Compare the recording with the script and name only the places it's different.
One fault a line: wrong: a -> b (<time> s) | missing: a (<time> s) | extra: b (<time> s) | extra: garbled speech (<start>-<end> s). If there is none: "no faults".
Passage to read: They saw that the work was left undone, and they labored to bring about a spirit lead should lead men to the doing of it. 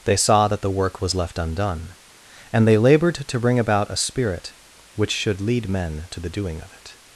wrong: lead -> which (5.0 s)